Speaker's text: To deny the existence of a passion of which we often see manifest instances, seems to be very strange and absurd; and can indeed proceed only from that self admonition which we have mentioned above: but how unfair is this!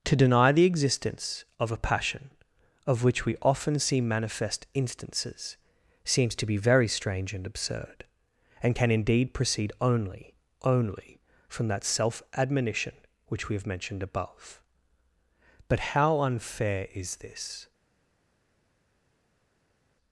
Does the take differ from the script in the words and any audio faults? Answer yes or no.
yes